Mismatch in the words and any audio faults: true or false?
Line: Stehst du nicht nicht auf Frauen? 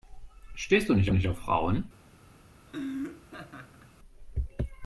true